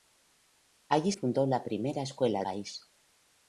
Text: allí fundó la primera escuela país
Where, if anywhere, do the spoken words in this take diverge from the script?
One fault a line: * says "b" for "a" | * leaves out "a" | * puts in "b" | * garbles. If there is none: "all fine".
all fine